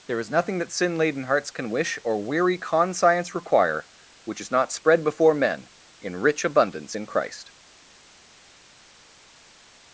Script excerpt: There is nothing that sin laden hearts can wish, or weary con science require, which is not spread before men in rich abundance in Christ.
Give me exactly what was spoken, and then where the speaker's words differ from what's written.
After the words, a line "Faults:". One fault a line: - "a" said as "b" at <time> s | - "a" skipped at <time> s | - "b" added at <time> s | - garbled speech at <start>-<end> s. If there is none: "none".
There is nothing that sin laden hearts can wish, or weary con science require, which is not spread before men in rich abundance in Christ.
Faults:
none